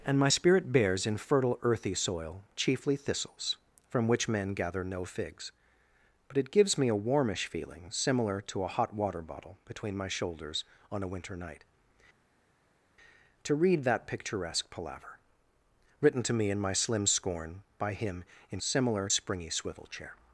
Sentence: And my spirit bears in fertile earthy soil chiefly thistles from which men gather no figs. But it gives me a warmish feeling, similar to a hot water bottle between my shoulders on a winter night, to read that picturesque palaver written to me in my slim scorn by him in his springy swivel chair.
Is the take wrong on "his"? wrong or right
wrong